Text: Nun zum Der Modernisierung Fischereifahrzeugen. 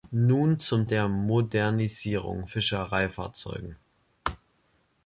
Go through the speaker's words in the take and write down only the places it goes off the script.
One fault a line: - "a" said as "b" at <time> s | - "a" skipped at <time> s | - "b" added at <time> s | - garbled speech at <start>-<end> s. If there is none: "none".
none